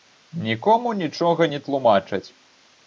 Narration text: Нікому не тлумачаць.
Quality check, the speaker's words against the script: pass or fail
fail